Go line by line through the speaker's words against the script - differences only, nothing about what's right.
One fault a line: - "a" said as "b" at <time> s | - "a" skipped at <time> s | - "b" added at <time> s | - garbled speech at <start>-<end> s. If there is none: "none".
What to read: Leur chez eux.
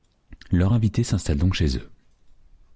- "invité s'installe donc" added at 0.7 s